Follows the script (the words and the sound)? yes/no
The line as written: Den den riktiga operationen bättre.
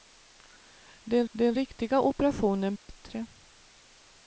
no